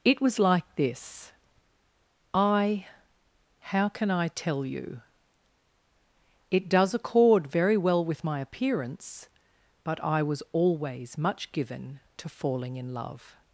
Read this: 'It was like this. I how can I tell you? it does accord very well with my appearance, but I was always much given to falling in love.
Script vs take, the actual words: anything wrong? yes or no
no